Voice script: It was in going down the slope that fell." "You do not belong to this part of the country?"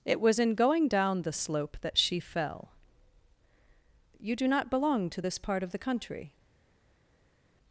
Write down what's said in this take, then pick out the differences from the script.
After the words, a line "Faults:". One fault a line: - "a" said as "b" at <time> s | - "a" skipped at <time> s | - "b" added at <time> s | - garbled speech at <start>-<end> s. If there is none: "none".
It was in going down the slope that she fell." "You do not belong to this part of the country?"
Faults:
- "she" added at 2.0 s